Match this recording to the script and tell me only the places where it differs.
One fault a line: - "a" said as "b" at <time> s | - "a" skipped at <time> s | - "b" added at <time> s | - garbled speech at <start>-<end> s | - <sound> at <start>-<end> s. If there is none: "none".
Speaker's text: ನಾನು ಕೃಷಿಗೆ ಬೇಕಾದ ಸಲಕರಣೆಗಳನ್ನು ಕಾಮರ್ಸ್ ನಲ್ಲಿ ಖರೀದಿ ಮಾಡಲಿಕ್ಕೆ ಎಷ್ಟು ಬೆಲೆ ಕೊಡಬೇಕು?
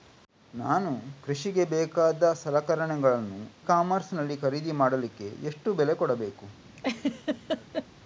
- laugh at 6.8-7.9 s